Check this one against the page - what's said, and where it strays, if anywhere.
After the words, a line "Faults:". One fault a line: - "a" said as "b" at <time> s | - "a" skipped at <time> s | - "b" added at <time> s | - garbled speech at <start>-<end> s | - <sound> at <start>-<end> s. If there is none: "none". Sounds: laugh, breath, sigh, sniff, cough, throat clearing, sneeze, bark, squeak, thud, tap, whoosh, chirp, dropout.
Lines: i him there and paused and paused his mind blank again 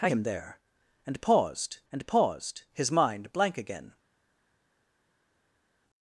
i him there and paused and paused his mind blank again
Faults:
none